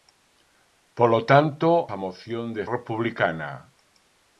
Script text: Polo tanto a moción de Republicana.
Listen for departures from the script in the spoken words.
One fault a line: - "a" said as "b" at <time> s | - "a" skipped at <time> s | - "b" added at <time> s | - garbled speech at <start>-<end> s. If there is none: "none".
none